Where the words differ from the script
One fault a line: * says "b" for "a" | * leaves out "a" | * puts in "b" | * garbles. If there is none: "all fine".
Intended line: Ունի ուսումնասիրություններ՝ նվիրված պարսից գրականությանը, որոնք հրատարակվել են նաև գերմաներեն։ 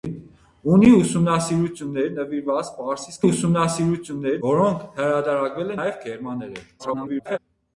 * says "ուսումնասիրություններ" for "գրականությանը"
* leaves out "են"
* garbles